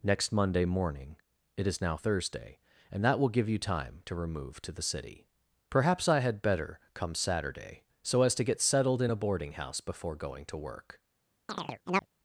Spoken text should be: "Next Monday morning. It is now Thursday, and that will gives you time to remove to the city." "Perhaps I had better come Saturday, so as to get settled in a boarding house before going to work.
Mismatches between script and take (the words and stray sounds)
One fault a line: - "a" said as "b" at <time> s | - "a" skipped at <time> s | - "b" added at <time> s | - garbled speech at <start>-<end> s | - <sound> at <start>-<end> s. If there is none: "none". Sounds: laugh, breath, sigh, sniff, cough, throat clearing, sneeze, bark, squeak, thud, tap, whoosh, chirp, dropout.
- "gives" said as "give" at 3.3 s
- chirp at 11.5-12.1 s